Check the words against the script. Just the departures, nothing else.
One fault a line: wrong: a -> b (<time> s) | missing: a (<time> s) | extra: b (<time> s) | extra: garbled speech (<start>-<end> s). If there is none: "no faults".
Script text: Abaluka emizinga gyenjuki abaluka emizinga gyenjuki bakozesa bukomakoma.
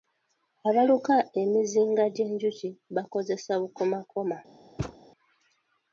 missing: abaluka emizinga gyenjuki (2.7 s)